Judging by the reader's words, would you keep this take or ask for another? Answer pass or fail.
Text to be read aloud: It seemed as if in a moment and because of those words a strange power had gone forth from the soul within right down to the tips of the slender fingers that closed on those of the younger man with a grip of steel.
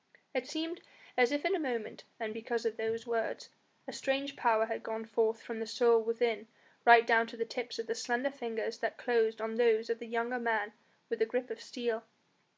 pass